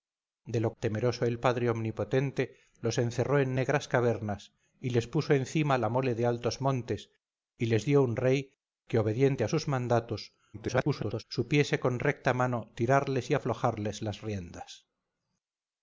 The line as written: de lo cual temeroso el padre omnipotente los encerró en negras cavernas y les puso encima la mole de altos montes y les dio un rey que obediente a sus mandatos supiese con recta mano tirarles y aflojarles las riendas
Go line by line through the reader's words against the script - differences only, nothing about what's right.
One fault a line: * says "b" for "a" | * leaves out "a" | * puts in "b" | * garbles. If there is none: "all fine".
* leaves out "cual"
* garbles